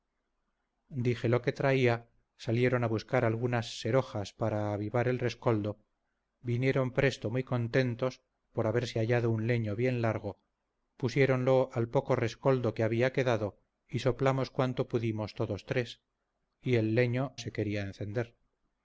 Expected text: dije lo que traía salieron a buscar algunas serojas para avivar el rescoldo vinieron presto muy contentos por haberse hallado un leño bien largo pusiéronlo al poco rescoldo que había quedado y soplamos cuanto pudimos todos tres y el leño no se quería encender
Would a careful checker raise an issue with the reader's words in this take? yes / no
yes